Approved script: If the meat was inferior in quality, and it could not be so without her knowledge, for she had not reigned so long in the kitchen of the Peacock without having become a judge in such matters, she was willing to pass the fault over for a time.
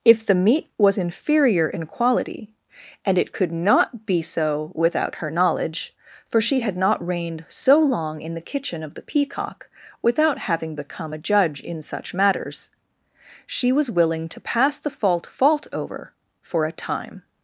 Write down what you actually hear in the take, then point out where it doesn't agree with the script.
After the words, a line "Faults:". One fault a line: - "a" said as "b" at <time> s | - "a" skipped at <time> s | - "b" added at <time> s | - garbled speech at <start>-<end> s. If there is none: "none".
If the meat was inferior in quality, and it could not be so without her knowledge, for she had not reigned so long in the kitchen of the Peacock without having become a judge in such matters, she was willing to pass the fault fault over for a time.
Faults:
- "fault" added at 15.3 s